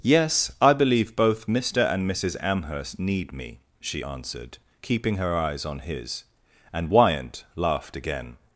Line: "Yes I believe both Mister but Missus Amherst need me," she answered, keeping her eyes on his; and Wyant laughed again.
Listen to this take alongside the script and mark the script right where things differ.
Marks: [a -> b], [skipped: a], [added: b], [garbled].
"Yes I believe both Mister [but -> and] Missus Amherst need me," she answered, keeping her eyes on his; and Wyant laughed again.